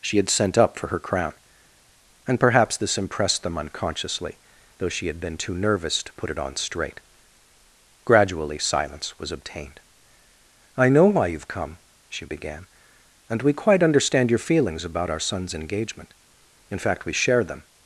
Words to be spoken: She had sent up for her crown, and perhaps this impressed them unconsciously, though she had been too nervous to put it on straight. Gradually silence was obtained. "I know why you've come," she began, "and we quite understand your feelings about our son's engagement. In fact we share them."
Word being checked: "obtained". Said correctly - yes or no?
yes